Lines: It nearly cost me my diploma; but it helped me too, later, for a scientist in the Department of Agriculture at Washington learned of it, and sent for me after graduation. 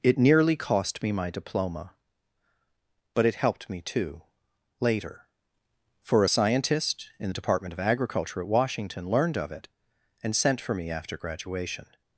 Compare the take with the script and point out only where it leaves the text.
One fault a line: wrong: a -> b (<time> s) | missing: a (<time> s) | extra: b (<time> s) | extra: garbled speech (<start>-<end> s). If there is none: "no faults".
no faults